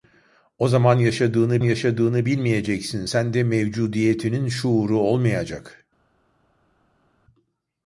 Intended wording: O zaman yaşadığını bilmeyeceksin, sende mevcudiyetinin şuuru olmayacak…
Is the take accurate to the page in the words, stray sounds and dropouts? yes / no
no